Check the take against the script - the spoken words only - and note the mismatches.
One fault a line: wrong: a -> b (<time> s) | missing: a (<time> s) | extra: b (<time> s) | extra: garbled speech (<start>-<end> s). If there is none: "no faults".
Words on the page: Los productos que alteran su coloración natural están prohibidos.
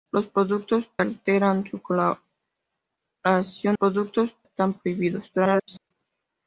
missing: que (0.9 s)
wrong: natural -> productos (3.7 s)
extra: garbled speech (5.3-5.9 s)